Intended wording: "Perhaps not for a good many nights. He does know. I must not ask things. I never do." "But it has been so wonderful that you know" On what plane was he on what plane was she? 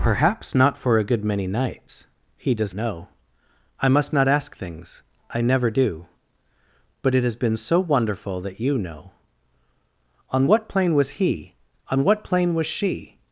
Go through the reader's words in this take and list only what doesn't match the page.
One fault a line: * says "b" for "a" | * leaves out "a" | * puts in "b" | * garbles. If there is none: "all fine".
all fine